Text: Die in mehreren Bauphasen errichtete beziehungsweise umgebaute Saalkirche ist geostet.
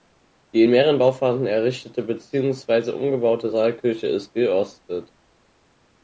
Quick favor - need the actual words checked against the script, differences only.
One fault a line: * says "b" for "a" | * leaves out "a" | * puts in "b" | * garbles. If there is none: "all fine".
all fine